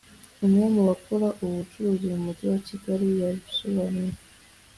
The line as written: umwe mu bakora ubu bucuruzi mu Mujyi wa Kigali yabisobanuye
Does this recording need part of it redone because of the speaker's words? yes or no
no